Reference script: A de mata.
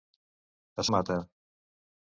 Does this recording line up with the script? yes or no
yes